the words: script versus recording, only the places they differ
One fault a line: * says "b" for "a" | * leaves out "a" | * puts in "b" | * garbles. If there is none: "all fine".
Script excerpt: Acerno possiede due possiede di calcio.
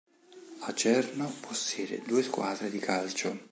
* says "squadre" for "possiede"